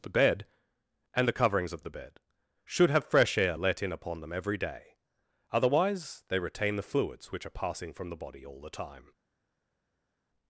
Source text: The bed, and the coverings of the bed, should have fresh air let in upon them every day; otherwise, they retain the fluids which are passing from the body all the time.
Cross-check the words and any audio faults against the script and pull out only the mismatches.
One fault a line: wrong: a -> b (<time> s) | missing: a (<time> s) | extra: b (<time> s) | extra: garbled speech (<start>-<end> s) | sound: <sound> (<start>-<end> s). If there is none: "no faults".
no faults